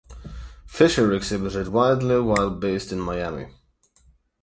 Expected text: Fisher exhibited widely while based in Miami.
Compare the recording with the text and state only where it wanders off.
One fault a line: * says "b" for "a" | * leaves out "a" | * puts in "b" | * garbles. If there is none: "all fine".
all fine